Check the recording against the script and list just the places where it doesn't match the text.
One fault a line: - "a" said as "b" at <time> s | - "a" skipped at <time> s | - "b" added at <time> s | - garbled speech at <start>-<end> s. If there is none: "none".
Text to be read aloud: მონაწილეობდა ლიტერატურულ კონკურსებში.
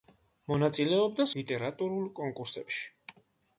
none